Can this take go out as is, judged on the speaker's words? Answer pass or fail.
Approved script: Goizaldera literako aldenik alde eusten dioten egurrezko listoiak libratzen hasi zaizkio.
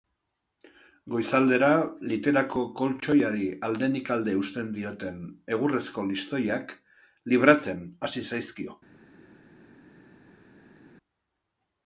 fail